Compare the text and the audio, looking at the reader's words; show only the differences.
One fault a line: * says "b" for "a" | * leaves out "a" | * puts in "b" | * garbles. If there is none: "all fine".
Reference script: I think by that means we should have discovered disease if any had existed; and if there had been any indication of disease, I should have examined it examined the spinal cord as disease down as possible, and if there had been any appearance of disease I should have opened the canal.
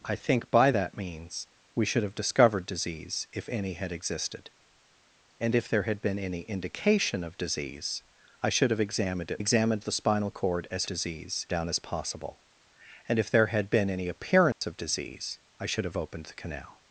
all fine